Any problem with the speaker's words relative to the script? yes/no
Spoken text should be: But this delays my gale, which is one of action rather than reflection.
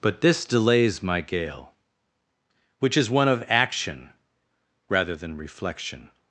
no